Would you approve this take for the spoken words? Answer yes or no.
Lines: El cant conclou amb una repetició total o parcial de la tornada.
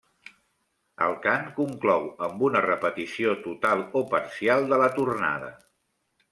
yes